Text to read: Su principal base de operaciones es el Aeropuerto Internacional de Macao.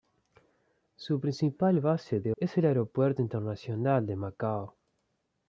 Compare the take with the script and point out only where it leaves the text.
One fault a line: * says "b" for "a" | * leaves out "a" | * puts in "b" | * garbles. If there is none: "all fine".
* leaves out "operaciones"